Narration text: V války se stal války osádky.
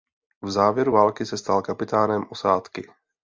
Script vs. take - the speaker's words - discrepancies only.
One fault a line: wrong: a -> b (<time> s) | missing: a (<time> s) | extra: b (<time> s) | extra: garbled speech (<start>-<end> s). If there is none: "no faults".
extra: závěru (0.5 s)
wrong: války -> kapitánem (1.6 s)